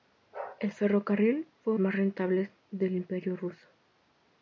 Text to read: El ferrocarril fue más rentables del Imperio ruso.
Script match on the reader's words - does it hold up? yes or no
yes